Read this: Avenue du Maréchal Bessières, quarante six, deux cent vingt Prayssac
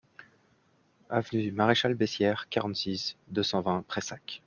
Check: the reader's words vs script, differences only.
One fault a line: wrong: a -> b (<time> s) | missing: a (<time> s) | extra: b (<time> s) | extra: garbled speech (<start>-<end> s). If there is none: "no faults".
no faults